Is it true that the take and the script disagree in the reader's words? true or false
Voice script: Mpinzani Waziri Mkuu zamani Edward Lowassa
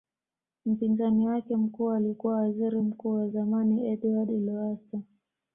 true